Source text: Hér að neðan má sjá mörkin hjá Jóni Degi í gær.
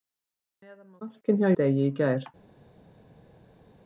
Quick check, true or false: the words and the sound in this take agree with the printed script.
false